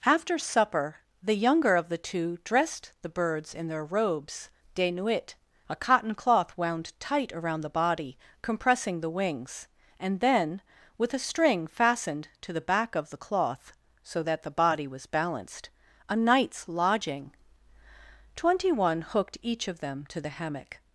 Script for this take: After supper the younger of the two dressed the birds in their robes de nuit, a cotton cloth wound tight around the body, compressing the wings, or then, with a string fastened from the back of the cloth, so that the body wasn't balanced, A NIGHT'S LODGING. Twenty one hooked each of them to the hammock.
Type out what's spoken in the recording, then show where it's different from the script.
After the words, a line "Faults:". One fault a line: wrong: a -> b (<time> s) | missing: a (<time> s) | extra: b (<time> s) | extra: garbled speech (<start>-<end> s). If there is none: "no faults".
After supper the younger of the two dressed the birds in their robes de nuit, a cotton cloth wound tight around the body, compressing the wings, and then, with a string fastened to the back of the cloth, so that the body was balanced, A NIGHT'S LODGING. Twenty one hooked each of them to the hammock.
Faults:
wrong: or -> and (10.0 s)
wrong: from -> to (12.4 s)
wrong: wasn't -> was (14.9 s)